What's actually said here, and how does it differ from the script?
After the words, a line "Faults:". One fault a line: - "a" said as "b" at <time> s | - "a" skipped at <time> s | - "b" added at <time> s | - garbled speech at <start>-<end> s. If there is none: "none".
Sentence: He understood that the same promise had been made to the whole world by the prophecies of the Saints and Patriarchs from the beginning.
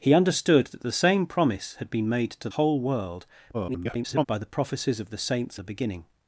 He understood that the same promise had been made to whole world [garbled] by the prophecies of the Saints the beginning.
Faults:
- "the" skipped at 2.5 s
- garbled speech at 3.5-4.2 s
- "and Patriarchs from" skipped at 5.6 s